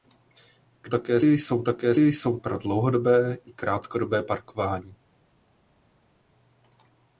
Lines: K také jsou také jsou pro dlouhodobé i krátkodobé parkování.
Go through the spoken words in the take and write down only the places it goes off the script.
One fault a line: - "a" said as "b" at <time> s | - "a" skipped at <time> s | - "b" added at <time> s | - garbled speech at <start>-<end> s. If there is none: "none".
none